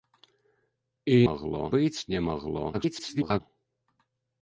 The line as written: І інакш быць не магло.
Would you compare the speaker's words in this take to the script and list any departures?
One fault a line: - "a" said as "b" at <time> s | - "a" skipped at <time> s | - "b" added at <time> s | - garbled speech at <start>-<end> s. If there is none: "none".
- "інакш" said as "магло" at 1.3 s
- garbled speech at 2.7-3.4 s